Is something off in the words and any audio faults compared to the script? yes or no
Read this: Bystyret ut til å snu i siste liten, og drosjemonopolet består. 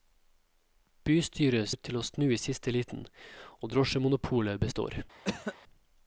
yes